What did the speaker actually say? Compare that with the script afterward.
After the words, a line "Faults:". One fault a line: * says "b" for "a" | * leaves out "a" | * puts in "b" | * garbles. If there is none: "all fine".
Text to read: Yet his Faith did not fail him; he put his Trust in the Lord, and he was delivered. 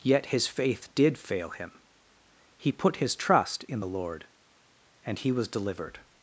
Yet his Faith did fail him; he put his Trust in the Lord, and he was delivered.
Faults:
* leaves out "not"